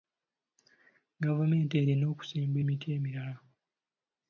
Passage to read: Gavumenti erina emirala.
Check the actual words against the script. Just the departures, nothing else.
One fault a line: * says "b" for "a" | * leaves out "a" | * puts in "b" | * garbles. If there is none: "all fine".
* puts in "okusimba emiti"